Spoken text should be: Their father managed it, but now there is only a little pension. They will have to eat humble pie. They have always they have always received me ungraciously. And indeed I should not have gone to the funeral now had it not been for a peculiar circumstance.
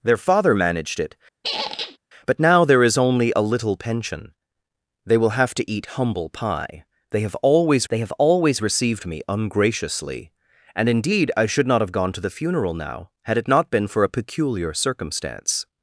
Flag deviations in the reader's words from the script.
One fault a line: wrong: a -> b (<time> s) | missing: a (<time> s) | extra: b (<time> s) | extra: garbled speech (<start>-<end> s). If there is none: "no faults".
no faults